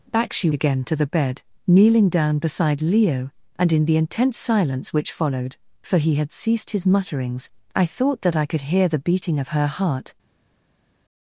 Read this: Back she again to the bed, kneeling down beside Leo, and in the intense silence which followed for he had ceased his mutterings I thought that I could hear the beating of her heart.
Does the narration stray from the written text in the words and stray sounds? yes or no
no